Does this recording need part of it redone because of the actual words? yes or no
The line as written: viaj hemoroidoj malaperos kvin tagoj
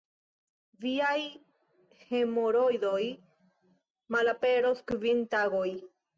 no